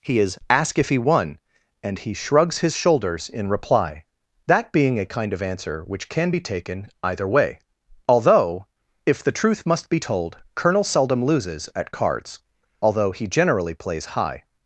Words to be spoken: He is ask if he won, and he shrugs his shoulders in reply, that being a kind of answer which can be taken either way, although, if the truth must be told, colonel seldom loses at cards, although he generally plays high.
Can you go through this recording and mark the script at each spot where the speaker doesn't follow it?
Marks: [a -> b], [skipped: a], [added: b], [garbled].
He is ask if he won, and he shrugs his shoulders in reply, that being a kind of answer which can be taken either way, although, if the truth must be told, colonel seldom loses at cards, although he generally plays high.